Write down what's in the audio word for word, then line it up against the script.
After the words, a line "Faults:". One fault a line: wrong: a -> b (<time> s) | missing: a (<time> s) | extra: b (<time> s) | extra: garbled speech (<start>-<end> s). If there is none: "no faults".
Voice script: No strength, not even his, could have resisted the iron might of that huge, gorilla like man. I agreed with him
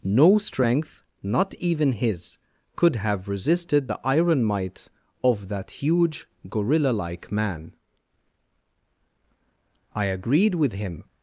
No strength, not even his, could have resisted the iron might of that huge, gorilla like man. I agreed with him
Faults:
no faults